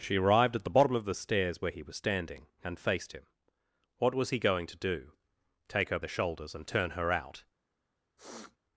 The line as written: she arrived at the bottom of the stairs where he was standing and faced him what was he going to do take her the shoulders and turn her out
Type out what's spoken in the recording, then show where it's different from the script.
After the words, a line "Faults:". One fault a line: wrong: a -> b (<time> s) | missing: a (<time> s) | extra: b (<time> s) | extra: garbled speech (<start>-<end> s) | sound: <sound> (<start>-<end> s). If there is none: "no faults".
she arrived at the bottom of the stairs where he was standing and faced him what was he going to do take her the shoulders and turn her out
Faults:
sound: sniff (8.2-8.6 s)